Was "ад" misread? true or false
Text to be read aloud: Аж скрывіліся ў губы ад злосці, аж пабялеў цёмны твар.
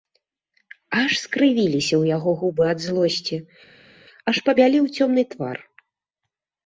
false